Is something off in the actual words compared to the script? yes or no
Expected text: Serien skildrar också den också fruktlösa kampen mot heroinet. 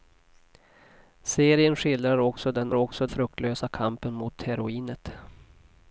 no